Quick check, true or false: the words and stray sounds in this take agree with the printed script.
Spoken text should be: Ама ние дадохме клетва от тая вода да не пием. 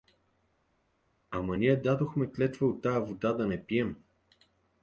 true